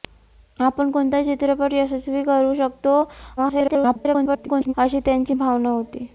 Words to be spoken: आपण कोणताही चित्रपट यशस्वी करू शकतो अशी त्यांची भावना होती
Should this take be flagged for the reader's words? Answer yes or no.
yes